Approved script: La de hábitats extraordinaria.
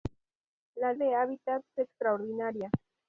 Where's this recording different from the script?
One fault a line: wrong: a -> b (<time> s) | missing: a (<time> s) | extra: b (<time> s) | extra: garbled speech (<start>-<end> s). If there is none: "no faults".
no faults